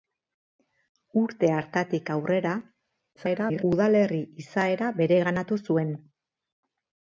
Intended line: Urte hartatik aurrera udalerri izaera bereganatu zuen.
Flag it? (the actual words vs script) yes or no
yes